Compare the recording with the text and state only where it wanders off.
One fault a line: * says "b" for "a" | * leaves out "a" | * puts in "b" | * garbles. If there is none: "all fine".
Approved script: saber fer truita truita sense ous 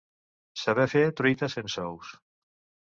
* leaves out "truita"